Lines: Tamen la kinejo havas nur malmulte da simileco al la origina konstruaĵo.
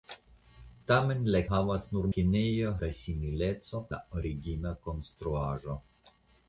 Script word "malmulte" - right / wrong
wrong